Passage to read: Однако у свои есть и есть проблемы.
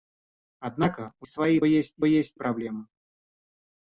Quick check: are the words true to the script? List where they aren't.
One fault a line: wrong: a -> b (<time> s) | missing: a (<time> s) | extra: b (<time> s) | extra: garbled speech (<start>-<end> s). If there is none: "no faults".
no faults